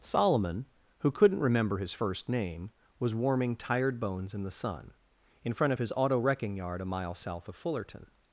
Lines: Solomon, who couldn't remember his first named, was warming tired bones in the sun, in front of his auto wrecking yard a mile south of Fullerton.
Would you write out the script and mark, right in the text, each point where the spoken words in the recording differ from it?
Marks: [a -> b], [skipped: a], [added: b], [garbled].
Solomon, who couldn't remember his first [named, -> name] was warming tired bones in the sun, in front of his auto wrecking yard a mile south of Fullerton.